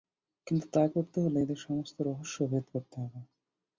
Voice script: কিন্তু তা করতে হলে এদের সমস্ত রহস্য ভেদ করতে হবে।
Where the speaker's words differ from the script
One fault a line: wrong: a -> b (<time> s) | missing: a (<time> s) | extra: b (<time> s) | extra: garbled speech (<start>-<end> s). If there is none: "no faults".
no faults